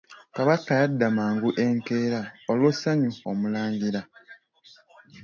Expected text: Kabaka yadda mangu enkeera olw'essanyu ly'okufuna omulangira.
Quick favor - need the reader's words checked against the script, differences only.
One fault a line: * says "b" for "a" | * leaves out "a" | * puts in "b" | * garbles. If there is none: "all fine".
* leaves out "ly'okufuna"